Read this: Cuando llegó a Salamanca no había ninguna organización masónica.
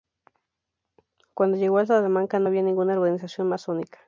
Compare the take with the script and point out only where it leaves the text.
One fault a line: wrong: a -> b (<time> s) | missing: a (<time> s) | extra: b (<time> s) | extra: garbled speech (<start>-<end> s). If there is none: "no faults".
no faults